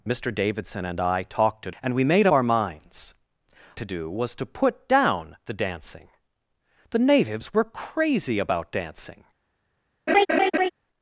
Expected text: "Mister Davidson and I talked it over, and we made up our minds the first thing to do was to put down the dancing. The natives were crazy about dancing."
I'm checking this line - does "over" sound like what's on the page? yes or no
no